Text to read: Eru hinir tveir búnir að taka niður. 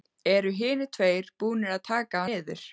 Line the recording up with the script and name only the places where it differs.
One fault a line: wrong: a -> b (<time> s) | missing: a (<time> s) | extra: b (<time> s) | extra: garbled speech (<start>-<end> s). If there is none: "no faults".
no faults